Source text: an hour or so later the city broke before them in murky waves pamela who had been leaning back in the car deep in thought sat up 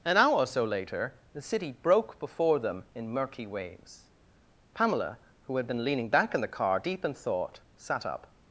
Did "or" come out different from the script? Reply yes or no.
no